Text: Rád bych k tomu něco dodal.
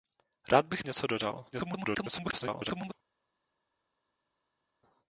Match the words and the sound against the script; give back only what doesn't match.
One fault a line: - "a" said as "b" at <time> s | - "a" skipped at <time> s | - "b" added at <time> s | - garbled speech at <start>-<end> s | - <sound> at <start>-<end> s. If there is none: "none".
- "tomu" skipped at 0.8 s
- garbled speech at 1.5-2.9 s